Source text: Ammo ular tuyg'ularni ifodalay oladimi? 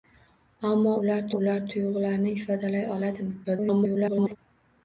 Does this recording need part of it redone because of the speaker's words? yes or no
yes